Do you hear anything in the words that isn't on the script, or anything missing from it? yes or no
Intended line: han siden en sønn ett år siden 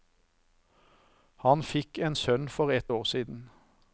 yes